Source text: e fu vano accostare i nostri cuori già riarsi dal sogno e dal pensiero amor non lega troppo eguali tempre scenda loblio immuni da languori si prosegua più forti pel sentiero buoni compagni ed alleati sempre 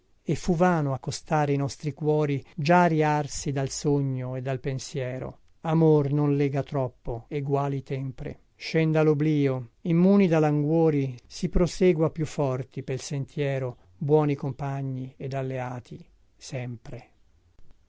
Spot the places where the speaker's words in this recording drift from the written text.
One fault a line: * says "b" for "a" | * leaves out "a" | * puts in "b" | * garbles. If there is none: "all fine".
all fine